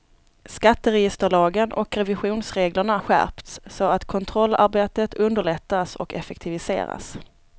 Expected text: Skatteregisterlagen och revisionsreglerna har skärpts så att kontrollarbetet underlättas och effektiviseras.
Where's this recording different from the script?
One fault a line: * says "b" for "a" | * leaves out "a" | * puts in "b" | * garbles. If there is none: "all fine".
* leaves out "har"